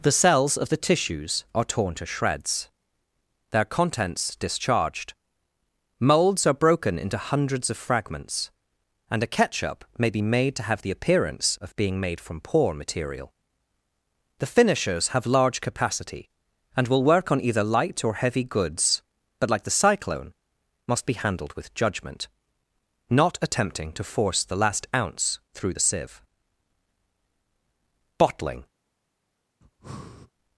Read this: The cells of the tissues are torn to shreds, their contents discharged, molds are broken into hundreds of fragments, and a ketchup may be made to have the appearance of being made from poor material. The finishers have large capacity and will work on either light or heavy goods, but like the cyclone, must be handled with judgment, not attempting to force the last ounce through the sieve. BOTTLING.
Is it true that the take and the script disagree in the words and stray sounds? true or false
true